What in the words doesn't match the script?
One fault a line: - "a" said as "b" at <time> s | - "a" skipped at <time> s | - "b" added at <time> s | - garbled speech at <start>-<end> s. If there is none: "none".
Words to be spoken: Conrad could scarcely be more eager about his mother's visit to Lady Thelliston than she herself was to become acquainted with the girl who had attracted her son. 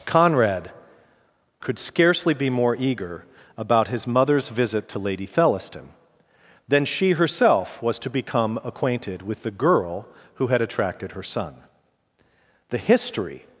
- "The history" added at 12.7 s